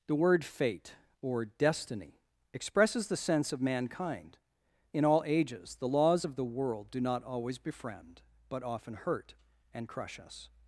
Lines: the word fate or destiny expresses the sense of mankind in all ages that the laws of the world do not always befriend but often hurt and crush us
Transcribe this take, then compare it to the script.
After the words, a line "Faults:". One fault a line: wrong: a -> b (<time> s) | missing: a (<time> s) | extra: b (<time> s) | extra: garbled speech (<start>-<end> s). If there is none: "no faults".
the word fate or destiny expresses the sense of mankind in all ages the laws of the world do not always befriend but often hurt and crush us
Faults:
missing: that (5.8 s)